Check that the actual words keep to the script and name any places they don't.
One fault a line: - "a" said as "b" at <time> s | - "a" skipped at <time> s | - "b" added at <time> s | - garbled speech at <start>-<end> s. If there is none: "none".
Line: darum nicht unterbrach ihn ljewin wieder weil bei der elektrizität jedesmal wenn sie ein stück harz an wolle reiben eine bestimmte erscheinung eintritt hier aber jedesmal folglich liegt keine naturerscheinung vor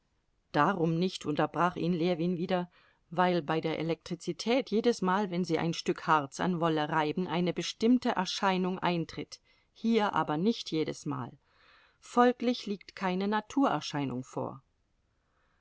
- "nicht" added at 10.4 s